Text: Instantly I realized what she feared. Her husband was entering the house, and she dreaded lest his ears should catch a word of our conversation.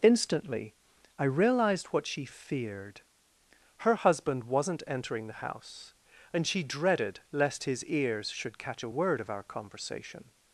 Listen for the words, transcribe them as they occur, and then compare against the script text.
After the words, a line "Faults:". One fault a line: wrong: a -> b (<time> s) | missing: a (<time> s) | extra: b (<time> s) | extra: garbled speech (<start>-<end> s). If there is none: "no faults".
Instantly I realized what she feared. Her husband wasn't entering the house, and she dreaded lest his ears should catch a word of our conversation.
Faults:
wrong: was -> wasn't (4.4 s)